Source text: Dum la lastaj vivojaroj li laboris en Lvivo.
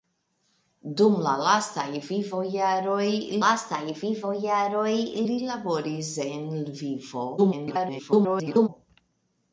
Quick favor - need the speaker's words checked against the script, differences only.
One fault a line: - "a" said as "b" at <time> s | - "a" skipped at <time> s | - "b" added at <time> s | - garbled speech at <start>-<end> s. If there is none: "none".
- "lastaj vivojaroj" added at 3.4 s
- garbled speech at 7.4-8.7 s